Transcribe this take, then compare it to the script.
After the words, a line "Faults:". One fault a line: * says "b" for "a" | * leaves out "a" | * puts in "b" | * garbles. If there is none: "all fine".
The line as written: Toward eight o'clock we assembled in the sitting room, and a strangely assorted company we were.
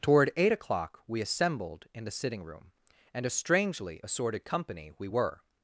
Toward eight o'clock we assembled in the sitting room, and a strangely assorted company we were.
Faults:
all fine